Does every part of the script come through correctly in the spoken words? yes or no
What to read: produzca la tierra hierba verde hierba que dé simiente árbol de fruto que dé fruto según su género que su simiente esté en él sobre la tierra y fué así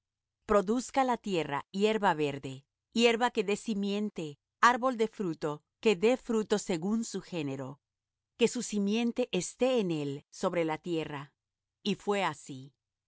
yes